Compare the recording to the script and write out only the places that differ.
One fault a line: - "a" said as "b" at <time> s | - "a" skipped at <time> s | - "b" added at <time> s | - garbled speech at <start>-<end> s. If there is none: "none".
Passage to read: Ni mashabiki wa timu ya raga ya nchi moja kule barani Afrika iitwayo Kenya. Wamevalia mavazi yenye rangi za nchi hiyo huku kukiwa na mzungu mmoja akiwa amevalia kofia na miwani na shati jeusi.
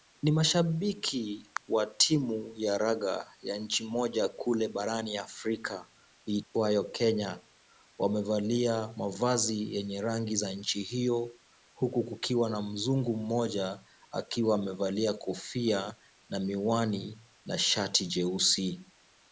none